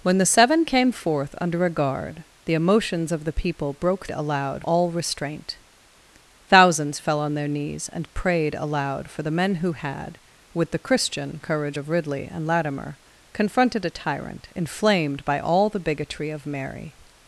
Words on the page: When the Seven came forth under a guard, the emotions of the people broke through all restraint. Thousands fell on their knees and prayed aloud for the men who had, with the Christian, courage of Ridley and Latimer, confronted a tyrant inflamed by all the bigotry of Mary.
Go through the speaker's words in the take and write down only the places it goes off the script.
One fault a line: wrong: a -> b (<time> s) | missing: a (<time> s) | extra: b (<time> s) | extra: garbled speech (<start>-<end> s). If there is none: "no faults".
wrong: through -> aloud (4.1 s)